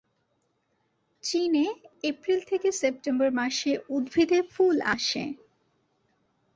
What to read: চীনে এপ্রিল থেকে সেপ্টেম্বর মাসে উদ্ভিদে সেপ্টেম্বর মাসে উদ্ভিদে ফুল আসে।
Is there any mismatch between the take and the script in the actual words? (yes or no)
yes